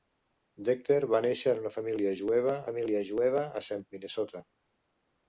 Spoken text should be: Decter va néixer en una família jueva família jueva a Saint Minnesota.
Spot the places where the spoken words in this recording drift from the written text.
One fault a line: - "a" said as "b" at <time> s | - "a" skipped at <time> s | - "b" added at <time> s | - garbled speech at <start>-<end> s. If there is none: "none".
none